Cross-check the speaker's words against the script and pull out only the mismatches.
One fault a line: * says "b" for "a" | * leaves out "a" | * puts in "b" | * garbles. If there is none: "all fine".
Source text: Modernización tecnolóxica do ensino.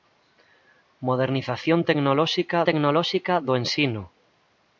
* puts in "tecnolóxica"